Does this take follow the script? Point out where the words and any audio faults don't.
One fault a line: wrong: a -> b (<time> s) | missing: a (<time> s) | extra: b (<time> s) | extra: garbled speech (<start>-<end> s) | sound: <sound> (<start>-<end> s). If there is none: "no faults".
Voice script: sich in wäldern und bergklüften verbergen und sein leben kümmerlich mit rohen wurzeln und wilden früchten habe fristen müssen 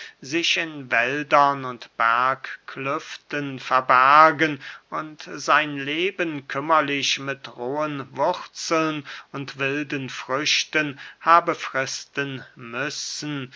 no faults